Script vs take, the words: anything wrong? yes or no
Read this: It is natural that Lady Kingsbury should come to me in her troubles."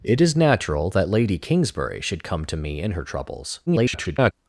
yes